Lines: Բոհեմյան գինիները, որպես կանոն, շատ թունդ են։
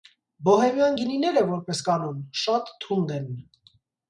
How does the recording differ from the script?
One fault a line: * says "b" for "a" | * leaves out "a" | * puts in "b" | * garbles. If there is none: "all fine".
all fine